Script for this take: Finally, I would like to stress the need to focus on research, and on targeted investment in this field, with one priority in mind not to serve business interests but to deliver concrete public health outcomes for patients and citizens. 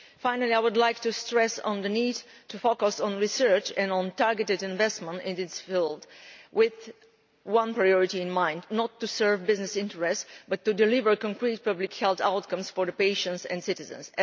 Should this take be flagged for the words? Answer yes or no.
no